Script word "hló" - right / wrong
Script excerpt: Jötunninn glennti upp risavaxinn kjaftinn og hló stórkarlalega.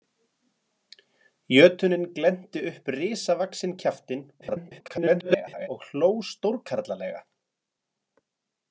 right